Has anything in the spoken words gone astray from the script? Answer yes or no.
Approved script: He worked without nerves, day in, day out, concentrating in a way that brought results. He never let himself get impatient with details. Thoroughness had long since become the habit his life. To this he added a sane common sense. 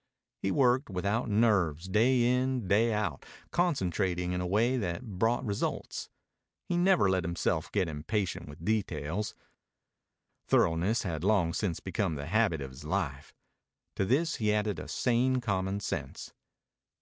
yes